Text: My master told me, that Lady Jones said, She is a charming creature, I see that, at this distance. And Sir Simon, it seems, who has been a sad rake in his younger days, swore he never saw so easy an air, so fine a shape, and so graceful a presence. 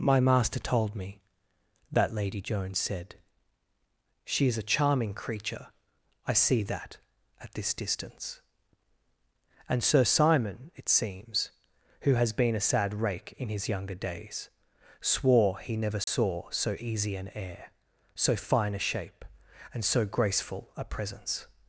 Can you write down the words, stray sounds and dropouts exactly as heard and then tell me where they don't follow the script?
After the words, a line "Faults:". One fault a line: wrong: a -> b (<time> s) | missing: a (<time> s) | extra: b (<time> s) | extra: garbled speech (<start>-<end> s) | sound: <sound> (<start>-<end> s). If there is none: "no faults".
My master told me, that Lady Jones said, She is a charming creature, I see that, at this distance. And Sir Simon, it seems, who has been a sad rake in his younger days, swore he never saw so easy an air, so fine a shape, and so graceful a presence.
Faults:
sound: dropout (16.0-16.1 s)